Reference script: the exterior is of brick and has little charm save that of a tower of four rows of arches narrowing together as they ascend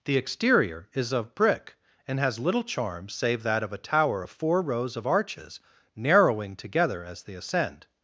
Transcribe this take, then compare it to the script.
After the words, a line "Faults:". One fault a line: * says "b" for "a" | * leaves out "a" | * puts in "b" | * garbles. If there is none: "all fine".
the exterior is of brick and has little charm save that of a tower of four rows of arches narrowing together as they ascend
Faults:
all fine